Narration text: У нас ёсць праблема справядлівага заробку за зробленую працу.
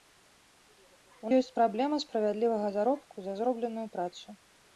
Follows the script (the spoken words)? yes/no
no